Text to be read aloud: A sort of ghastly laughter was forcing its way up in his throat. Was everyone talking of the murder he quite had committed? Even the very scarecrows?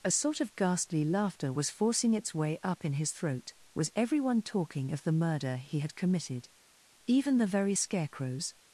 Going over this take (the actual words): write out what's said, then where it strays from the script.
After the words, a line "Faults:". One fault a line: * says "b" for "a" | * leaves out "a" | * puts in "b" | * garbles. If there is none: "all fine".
A sort of ghastly laughter was forcing its way up in his throat. Was everyone talking of the murder he had committed? Even the very scarecrows?
Faults:
* leaves out "quite"